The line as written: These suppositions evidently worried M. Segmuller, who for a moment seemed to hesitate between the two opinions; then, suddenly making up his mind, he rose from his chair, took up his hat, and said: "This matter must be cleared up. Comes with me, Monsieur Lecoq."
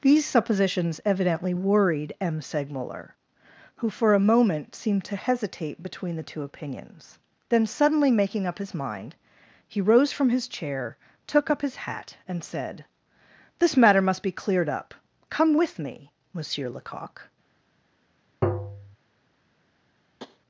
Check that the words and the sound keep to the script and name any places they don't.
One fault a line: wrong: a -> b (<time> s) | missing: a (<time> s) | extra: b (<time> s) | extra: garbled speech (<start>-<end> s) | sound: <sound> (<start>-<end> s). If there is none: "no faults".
wrong: Comes -> Come (15.3 s)
sound: tap (18.4-19.0 s)
sound: tap (20.2-20.4 s)